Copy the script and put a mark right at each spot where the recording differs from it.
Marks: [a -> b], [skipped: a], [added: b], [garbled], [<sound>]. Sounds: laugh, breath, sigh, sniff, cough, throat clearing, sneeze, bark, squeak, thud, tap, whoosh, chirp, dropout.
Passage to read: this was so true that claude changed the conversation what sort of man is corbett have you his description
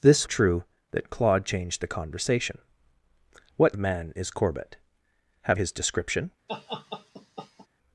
this [skipped: was so] true that claude changed the conversation what [skipped: sort] of man is corbett have [skipped: you] his description [laugh]